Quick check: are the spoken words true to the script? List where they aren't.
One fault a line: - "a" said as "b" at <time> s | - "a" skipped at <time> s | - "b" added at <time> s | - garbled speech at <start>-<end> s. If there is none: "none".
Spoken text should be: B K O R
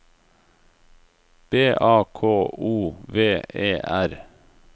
- "A" added at 1.8 s
- "V E" added at 3.1 s